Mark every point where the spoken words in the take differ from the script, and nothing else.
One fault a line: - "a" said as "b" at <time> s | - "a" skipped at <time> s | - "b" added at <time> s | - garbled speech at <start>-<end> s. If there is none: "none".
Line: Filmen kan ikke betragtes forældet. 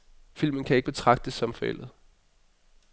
- "som" added at 1.3 s